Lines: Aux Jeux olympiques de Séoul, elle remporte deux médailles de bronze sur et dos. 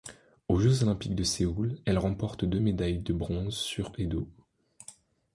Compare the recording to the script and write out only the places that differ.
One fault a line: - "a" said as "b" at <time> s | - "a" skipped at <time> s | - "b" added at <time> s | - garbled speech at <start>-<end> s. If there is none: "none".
none